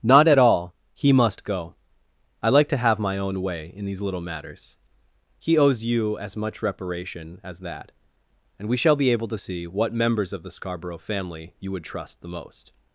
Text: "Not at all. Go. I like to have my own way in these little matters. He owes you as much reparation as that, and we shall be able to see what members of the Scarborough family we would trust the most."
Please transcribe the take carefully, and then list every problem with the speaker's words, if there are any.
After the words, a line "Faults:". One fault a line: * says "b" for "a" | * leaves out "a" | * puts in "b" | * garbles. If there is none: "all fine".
"Not at all. He must go. I like to have my own way in these little matters. He owes you as much reparation as that, and we shall be able to see what members of the Scarborough family you would trust the most."
Faults:
* puts in "He must"
* says "you" for "we"